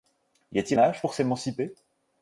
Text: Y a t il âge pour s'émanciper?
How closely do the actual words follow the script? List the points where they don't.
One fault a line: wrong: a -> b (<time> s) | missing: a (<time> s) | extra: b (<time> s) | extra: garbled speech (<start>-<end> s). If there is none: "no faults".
no faults